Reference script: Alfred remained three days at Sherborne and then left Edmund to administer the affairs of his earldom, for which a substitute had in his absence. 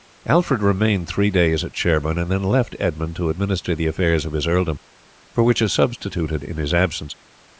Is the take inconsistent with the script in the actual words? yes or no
no